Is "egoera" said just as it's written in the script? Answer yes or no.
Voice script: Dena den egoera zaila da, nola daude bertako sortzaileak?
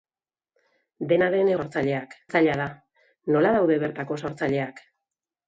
no